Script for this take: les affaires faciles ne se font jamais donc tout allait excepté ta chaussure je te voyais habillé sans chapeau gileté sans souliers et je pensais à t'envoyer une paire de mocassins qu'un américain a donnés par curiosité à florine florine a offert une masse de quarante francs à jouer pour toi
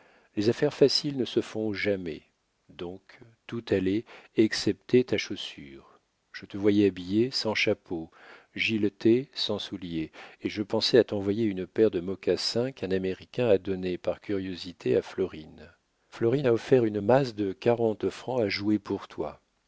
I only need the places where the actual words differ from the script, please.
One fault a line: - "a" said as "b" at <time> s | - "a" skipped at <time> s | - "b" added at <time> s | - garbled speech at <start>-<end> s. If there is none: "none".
none